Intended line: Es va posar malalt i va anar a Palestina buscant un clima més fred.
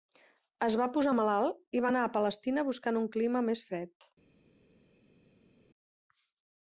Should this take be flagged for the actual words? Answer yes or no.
no